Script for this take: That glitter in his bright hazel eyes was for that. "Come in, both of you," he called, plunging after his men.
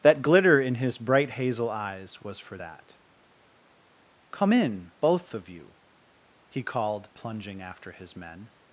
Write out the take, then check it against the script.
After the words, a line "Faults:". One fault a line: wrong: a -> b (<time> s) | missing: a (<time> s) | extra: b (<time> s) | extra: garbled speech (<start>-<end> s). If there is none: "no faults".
That glitter in his bright hazel eyes was for that. "Come in, both of you," he called, plunging after his men.
Faults:
no faults